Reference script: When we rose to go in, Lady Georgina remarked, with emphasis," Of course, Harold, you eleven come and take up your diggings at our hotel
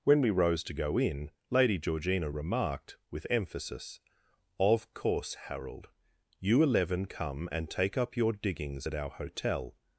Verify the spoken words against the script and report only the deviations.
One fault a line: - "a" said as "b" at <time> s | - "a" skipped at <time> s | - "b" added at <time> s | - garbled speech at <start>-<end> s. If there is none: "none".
none